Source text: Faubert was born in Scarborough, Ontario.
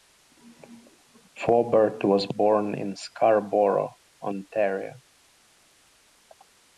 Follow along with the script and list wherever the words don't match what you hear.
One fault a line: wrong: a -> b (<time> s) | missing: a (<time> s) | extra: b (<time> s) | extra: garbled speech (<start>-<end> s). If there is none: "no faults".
no faults